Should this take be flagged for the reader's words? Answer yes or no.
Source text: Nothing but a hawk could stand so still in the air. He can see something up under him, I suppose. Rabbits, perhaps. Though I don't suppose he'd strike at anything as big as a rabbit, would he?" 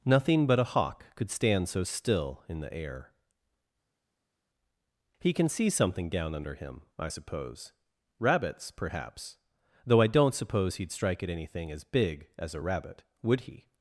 yes